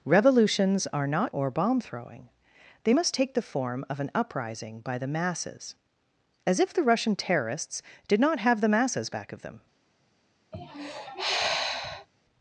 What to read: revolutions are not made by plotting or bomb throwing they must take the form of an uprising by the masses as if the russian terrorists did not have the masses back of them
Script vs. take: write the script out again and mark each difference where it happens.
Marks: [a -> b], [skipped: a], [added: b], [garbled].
revolutions are not [skipped: made by plotting] or bomb throwing they must take the form of an uprising by the masses as if the russian terrorists did not have the masses back of them